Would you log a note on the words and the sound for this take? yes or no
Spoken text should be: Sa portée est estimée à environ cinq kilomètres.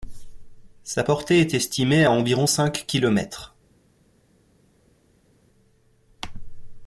no